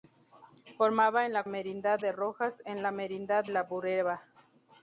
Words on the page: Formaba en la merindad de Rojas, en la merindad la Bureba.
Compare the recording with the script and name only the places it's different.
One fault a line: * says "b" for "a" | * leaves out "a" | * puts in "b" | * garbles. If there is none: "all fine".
all fine